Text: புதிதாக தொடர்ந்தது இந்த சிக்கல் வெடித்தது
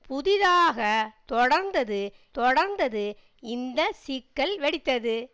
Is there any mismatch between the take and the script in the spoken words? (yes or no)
yes